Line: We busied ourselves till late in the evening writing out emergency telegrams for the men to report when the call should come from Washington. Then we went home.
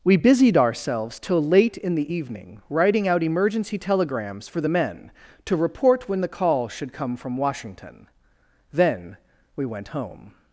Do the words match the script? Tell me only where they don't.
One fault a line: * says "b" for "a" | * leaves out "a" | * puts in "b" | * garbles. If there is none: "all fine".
all fine